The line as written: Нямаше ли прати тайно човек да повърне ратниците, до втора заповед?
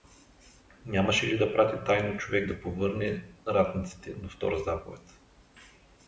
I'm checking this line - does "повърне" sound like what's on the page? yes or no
yes